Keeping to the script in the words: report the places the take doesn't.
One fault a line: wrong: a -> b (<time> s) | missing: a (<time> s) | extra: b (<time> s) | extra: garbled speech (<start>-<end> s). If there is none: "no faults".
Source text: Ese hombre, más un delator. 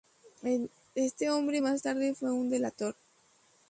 wrong: Ese -> Este (0.9 s)
extra: tarde fue (1.8 s)